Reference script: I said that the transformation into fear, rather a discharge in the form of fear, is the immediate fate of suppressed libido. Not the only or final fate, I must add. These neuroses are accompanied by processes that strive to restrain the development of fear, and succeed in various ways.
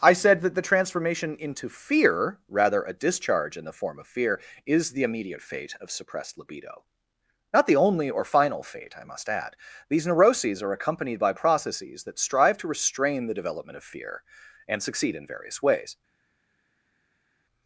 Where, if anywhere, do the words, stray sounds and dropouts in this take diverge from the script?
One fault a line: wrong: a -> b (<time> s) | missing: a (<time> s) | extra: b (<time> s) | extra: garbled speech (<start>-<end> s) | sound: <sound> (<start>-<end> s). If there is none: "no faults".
no faults